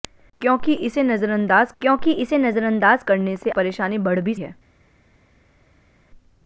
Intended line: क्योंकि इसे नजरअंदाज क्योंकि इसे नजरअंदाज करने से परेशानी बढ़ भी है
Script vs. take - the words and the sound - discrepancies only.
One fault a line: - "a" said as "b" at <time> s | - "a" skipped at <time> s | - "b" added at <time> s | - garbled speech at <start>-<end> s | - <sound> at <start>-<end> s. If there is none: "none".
none